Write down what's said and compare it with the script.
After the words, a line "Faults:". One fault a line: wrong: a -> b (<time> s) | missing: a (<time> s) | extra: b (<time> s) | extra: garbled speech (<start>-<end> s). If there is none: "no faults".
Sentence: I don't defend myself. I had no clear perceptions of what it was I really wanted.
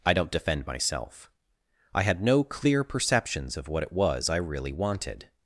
I don't defend myself. I had no clear perceptions of what it was I really wanted.
Faults:
no faults